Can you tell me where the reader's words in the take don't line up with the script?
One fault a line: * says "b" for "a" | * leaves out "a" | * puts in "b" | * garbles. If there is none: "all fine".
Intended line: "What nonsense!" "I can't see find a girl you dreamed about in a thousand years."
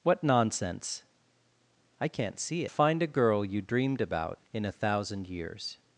all fine